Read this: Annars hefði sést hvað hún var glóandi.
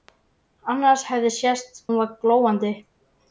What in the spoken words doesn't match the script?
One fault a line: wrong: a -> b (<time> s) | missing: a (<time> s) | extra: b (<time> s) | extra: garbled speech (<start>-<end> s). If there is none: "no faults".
missing: hvað (1.8 s)